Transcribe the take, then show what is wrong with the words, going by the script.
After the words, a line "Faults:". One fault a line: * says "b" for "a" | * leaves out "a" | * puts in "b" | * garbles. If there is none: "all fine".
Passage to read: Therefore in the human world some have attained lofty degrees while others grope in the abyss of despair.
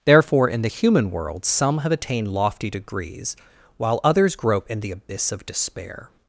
Therefore in the human world some have attained lofty degrees while others grope in the abyss of despair.
Faults:
all fine